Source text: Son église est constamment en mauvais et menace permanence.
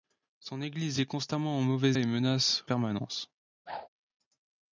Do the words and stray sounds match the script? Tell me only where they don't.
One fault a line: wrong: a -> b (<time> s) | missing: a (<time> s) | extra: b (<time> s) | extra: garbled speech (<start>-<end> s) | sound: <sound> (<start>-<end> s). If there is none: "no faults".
sound: whoosh (3.7-3.9 s)